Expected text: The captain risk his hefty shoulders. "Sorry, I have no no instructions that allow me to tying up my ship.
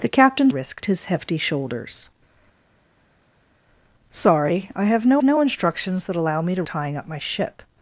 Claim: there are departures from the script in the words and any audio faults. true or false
false